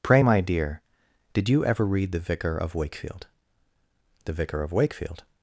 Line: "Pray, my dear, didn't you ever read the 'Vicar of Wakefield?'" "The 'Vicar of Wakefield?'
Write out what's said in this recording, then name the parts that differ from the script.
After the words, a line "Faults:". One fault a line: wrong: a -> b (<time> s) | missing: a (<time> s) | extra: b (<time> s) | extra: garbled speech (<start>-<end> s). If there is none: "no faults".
"Pray, my dear, did you ever read the 'Vicar of Wakefield?'" "The 'Vicar of Wakefield?'
Faults:
wrong: didn't -> did (1.3 s)